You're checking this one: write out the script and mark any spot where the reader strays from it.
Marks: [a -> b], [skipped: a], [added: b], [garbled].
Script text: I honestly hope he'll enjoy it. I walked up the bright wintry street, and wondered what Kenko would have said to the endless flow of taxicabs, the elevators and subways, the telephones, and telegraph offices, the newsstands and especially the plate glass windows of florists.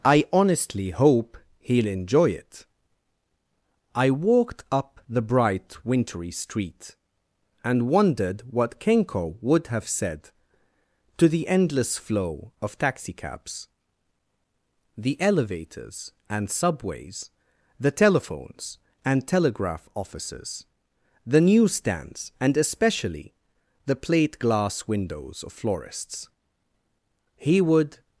I honestly hope he'll enjoy it. I walked up the bright wintry street, and wondered what Kenko would have said to the endless flow of taxicabs, the elevators and subways, the telephones, and telegraph offices, the newsstands and especially the plate glass windows of florists. [added: He would]